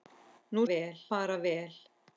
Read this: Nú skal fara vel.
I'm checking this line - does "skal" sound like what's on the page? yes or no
no